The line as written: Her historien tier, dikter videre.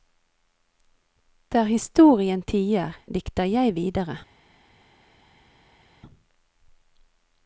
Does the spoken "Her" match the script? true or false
false